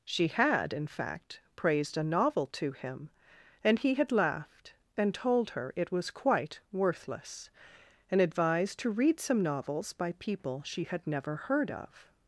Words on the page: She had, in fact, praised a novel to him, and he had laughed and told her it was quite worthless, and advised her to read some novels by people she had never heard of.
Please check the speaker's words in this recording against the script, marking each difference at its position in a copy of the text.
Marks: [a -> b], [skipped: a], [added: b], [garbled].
She had, in fact, praised a novel to him, and he had laughed and told her it was quite worthless, and advised [skipped: her] to read some novels by people she had never heard of.